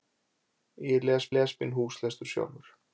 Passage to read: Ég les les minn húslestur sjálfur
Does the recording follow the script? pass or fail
pass